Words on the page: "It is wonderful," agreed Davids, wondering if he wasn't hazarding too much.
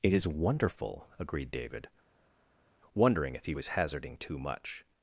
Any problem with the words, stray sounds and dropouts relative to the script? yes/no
yes